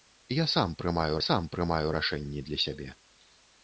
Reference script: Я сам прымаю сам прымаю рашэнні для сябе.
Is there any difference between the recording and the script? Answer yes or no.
no